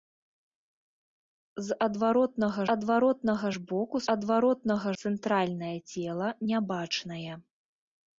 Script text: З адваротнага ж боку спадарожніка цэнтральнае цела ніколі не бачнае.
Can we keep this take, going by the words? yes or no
no